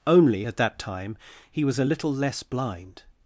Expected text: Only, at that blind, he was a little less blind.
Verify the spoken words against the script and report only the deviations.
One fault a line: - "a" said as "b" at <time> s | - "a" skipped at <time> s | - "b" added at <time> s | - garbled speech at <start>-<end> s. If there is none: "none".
- "blind" said as "time" at 0.8 s